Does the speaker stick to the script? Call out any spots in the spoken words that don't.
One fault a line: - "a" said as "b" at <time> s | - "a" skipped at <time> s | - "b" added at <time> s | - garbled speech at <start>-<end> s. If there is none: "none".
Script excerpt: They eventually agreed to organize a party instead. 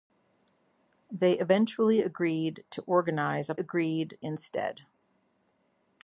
- "party" said as "agreed" at 3.6 s